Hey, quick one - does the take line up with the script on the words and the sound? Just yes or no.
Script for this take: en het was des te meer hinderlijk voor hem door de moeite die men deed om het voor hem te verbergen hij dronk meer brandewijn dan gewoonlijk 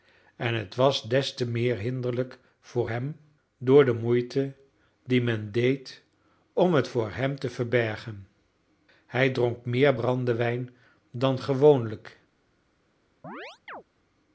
no